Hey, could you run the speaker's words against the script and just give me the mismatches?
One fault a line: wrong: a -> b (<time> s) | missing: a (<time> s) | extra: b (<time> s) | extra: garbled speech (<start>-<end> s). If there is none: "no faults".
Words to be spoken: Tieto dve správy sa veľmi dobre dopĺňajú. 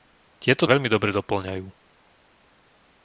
missing: dve správy sa (0.7 s)